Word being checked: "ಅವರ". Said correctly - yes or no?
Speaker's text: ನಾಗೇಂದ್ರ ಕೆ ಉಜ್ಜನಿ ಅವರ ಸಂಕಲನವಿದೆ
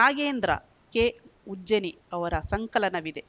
yes